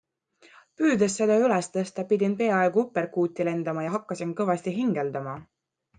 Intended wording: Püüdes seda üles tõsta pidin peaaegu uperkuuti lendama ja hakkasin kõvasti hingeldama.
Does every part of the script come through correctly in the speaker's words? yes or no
yes